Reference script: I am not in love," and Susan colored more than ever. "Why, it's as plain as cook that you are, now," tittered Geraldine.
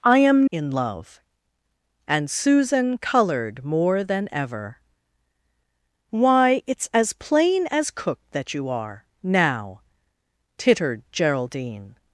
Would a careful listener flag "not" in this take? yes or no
yes